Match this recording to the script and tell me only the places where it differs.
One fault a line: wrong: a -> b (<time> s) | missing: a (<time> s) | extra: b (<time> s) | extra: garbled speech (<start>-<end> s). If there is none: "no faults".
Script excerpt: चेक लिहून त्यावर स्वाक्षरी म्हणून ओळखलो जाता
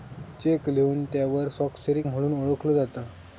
no faults